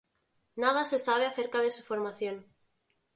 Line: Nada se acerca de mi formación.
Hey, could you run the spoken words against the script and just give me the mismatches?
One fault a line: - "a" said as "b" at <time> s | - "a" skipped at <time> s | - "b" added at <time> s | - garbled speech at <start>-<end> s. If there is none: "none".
- "sabe" added at 1.0 s
- "mi" said as "su" at 1.7 s